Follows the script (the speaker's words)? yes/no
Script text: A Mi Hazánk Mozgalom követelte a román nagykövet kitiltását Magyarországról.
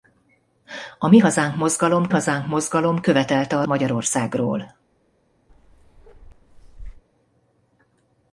no